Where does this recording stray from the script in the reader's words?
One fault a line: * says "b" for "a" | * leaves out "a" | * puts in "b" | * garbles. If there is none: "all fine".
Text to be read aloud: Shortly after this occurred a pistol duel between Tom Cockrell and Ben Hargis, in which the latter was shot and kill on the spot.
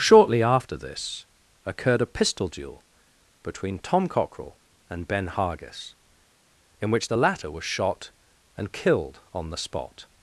* says "killed" for "kill"